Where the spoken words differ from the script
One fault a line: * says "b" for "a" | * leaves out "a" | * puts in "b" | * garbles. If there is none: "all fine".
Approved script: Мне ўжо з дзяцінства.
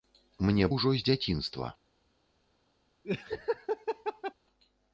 all fine